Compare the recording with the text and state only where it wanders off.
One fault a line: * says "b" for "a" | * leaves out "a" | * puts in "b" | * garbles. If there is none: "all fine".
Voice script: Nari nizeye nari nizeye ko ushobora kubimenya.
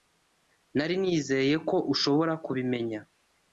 * leaves out "nari nizeye"